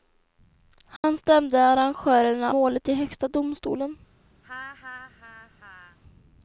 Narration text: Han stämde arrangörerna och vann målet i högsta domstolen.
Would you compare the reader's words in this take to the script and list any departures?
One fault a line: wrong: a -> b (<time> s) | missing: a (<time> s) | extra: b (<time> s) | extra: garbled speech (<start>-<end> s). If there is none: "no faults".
missing: och vann (2.5 s)